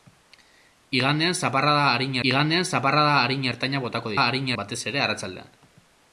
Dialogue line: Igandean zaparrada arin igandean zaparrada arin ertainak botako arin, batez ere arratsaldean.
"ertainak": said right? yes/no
yes